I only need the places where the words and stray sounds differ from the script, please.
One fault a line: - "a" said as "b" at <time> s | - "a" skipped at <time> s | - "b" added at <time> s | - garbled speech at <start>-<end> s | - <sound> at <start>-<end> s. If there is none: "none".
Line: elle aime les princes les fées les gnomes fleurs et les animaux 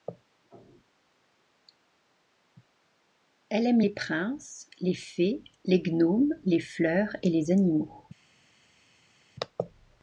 - "les" added at 6.4 s